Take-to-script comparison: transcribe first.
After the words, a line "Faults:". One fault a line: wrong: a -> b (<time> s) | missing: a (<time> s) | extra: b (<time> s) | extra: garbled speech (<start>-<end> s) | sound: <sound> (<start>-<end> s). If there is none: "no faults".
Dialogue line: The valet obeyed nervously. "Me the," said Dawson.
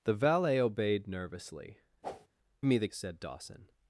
The valet obeyed nervously. "Me the," said Dawson.
Faults:
sound: whoosh (2.0-2.3 s)